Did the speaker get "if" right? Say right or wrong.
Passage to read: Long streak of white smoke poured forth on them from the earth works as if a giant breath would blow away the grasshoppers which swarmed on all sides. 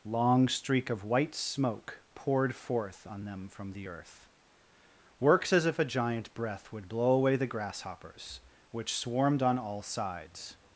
right